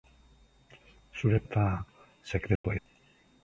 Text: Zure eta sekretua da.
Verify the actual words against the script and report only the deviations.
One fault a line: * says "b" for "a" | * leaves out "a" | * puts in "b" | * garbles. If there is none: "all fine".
all fine